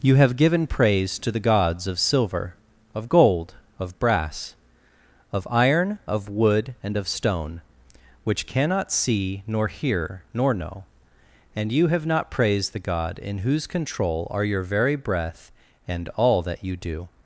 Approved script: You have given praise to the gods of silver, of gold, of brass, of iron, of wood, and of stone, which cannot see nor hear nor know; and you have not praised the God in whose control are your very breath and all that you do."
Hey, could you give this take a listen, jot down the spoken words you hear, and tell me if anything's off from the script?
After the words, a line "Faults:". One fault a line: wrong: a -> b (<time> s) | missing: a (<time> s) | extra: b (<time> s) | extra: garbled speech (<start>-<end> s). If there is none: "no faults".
You have given praise to the gods of silver, of gold, of brass, of iron, of wood, and of stone, which cannot see nor hear nor know; and you have not praised the God in whose control are your very breath and all that you do."
Faults:
no faults